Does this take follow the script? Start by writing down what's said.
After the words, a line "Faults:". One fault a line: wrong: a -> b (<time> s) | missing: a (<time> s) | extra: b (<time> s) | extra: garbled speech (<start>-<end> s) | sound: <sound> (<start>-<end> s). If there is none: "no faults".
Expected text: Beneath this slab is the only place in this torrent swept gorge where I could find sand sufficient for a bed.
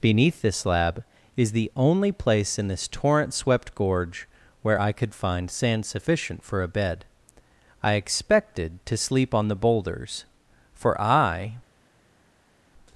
Beneath this slab is the only place in this torrent swept gorge where I could find sand sufficient for a bed. I expected to sleep on the boulders, for I
Faults:
extra: I expected to sleep on the boulders for I (7.8 s)